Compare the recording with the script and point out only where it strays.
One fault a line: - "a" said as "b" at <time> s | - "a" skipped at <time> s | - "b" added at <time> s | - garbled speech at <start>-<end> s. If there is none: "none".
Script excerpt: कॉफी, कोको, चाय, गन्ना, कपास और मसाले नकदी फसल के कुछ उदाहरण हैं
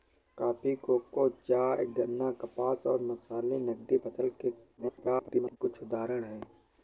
- garbled speech at 4.8-5.6 s